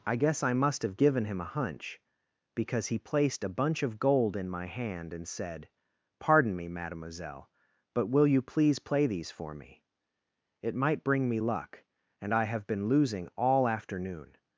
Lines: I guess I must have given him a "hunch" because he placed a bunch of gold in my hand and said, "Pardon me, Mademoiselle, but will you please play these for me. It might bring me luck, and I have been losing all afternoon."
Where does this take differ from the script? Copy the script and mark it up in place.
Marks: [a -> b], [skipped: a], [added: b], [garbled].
I guess I must have given him a "hunch" because he placed a bunch of gold in my hand and said, "Pardon me, Mademoiselle, but will you please play these for me. It might bring me luck, and I have been losing all afternoon."